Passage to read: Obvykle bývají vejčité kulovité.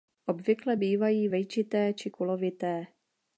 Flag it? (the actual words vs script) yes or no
yes